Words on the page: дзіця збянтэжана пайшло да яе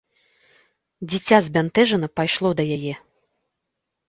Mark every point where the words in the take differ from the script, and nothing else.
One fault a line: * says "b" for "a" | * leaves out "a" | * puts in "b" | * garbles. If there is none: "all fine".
all fine